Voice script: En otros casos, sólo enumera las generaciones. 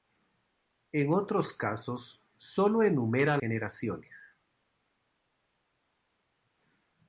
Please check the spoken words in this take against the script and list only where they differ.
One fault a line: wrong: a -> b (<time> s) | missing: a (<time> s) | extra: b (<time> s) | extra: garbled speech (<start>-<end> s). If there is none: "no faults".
missing: las (3.4 s)